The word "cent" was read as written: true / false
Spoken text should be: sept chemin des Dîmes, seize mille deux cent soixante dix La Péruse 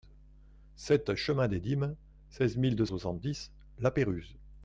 false